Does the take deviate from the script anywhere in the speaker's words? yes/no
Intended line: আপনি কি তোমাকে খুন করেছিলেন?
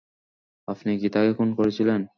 yes